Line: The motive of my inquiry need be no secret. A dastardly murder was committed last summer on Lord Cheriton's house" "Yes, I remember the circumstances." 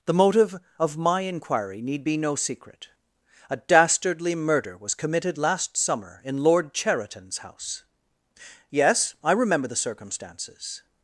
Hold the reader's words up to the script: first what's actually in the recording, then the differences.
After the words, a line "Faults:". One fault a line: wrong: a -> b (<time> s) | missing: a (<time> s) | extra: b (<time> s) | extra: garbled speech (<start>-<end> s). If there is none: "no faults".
The motive of my inquiry need be no secret. A dastardly murder was committed last summer in Lord Cheriton's house" "Yes, I remember the circumstances."
Faults:
wrong: on -> in (6.2 s)